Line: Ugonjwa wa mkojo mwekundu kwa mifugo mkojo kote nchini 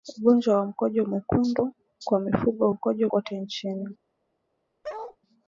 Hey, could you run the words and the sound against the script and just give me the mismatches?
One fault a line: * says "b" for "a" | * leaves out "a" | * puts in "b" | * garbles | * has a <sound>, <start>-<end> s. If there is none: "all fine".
* has a bark, 4.8-5.2 s